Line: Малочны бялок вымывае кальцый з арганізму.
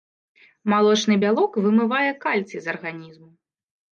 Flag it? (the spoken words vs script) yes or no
no